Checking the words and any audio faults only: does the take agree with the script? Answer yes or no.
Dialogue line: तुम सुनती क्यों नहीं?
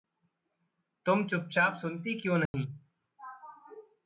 no